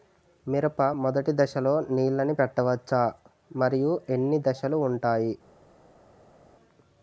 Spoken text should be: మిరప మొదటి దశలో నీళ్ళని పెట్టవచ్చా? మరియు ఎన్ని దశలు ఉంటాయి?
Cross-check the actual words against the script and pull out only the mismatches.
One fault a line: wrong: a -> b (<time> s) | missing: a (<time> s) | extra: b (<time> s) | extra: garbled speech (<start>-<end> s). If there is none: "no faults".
no faults